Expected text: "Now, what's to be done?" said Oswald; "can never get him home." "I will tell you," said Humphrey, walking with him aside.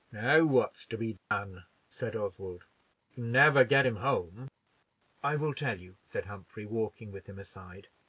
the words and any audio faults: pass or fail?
fail